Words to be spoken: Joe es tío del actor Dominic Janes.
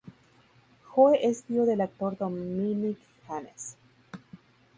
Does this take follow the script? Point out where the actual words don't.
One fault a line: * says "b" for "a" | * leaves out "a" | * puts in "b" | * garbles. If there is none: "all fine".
all fine